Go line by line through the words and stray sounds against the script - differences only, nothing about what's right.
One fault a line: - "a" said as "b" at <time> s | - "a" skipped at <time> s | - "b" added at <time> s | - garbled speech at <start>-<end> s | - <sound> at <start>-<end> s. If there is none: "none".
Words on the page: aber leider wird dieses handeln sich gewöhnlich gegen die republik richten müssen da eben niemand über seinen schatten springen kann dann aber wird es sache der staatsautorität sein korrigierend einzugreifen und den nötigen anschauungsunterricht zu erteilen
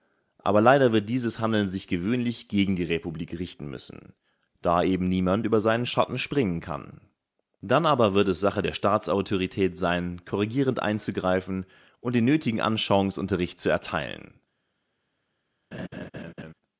- laugh at 15.7-16.5 s